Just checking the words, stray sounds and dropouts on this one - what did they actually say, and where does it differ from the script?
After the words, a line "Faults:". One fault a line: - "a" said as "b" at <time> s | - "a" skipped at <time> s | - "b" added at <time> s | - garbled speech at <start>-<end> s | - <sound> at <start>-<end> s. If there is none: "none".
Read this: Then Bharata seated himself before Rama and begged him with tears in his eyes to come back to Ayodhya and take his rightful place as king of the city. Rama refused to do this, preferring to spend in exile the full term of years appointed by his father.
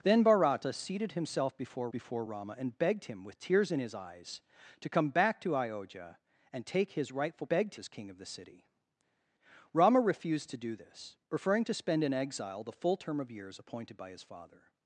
Then Bharata seated himself before before Rama and begged him with tears in his eyes to come back to Ayodhya and take his rightful begged as king of the city. Rama refused to do this, preferring to spend in exile the full term of years appointed by his father.
Faults:
- "before" added at 1.9 s
- "place" said as "begged" at 7.5 s